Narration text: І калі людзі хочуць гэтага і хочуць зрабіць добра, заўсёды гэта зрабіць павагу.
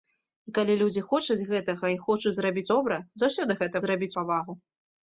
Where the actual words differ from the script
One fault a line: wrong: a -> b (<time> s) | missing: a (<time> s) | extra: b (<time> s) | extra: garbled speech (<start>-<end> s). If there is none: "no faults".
no faults